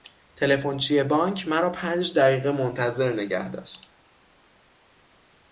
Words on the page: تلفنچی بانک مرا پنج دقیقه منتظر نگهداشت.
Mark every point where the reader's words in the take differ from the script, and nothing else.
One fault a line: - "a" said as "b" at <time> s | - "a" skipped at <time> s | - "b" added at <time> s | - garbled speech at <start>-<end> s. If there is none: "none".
none